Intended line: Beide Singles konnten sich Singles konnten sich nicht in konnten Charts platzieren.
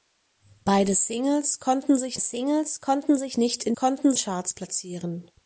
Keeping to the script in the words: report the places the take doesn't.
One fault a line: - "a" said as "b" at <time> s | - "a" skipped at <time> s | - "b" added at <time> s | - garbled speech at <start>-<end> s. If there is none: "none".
none